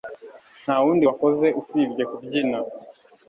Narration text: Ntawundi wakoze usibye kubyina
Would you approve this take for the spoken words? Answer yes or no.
yes